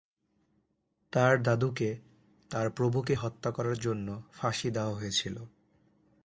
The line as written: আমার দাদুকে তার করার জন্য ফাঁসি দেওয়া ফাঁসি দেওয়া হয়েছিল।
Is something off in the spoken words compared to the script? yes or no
yes